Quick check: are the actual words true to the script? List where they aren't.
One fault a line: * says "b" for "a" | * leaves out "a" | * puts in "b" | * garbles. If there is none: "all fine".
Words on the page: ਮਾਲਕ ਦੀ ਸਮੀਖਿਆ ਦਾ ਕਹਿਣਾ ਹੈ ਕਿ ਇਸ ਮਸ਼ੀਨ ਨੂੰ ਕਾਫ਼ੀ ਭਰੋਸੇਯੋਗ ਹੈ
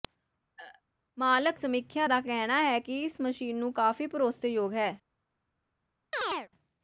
* leaves out "ਦੀ"